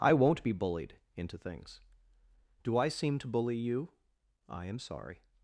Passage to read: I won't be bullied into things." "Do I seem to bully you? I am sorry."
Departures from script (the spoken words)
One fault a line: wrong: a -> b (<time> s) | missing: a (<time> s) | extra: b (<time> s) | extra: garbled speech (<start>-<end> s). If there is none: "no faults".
no faults